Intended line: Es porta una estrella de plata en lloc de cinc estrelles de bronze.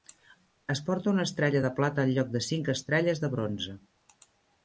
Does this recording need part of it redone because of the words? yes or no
no